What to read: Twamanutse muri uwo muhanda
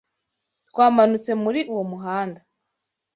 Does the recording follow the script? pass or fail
pass